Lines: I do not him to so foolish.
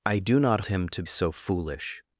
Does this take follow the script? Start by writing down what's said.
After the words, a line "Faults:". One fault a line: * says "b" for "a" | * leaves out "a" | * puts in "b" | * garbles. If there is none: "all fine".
I do not him to so foolish.
Faults:
all fine